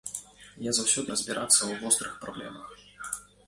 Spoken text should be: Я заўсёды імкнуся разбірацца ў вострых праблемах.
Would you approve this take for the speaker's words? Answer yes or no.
no